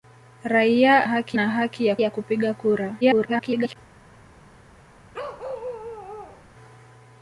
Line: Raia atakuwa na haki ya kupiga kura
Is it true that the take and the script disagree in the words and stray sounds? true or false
true